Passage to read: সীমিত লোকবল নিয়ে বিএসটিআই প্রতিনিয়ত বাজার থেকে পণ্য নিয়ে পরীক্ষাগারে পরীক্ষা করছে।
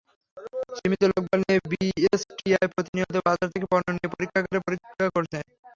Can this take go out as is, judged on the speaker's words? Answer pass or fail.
pass